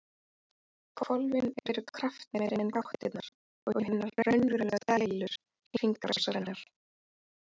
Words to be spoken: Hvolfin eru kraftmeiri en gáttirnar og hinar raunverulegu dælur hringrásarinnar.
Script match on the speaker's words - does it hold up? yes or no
yes